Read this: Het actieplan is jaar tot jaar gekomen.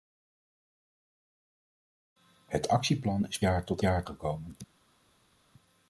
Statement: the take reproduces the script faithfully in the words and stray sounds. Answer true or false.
true